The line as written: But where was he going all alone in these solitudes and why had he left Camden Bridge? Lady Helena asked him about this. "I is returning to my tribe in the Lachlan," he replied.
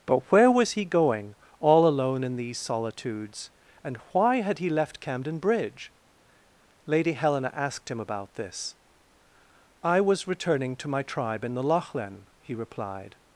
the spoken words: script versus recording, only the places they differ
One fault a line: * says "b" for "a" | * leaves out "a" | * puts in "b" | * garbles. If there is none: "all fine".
* says "was" for "is"